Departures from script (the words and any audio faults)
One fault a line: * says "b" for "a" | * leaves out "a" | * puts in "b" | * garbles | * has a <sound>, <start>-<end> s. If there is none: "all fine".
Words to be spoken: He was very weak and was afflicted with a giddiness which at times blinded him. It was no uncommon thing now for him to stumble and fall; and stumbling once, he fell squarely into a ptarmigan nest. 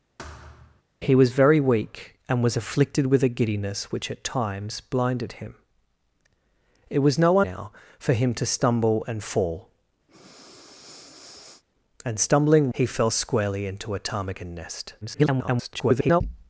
* has a thud, 0.2-0.8 s
* leaves out "uncommon thing"
* has a breath, 10.1-11.6 s
* leaves out "once"
* garbles